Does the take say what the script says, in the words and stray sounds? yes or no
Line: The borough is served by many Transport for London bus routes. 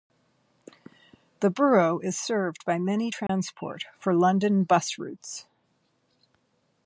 no